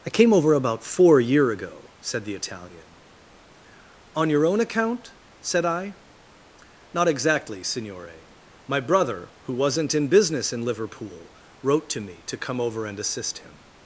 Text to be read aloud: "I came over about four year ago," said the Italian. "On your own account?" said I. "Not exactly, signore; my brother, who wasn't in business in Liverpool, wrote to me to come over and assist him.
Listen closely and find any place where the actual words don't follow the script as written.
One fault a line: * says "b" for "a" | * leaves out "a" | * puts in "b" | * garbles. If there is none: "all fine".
all fine